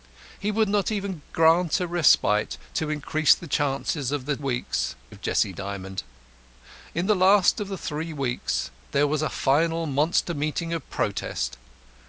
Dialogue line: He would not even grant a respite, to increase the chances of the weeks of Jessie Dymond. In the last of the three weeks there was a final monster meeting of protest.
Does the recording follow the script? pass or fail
pass